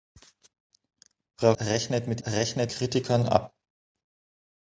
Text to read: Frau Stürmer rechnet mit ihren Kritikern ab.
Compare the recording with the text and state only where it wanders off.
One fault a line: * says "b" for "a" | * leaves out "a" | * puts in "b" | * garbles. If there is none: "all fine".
* leaves out "Stürmer"
* says "rechnet" for "ihren"